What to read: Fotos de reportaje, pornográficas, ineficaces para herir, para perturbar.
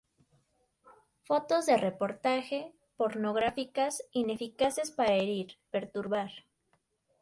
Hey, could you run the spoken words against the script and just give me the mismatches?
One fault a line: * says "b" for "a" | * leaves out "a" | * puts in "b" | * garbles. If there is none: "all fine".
* leaves out "para"